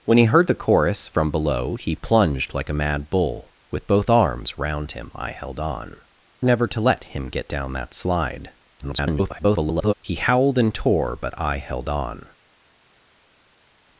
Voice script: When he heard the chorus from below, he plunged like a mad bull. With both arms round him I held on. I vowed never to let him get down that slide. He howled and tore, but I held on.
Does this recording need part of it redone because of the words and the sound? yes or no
yes